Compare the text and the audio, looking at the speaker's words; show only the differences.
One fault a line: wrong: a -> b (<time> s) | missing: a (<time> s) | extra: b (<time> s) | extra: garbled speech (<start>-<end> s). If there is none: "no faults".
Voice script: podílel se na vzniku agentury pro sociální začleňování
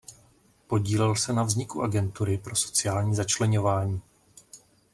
no faults